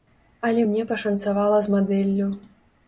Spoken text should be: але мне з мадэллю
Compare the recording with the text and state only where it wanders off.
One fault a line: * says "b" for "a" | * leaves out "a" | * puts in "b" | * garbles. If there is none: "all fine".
* puts in "пашанцавала"